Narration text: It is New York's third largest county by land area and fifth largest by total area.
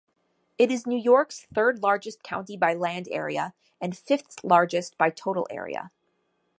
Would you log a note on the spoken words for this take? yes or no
no